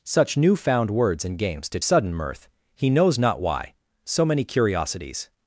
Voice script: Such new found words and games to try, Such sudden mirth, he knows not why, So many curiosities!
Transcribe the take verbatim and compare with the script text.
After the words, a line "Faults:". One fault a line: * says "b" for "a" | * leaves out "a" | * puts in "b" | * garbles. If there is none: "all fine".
Such new found words and games to sudden mirth, he knows not why, So many curiosities!
Faults:
* leaves out "try Such"